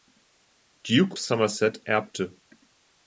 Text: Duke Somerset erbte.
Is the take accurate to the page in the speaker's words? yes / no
yes